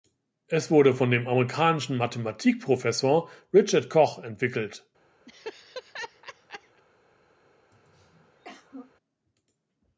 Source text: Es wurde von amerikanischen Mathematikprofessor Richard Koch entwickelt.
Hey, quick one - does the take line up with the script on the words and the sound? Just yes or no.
no